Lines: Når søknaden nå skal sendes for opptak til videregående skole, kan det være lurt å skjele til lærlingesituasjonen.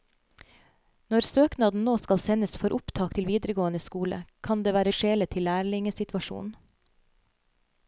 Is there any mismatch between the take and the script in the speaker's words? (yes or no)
yes